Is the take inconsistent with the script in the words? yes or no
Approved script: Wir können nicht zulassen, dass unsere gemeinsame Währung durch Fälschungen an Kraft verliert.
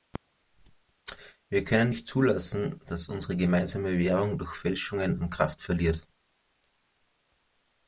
no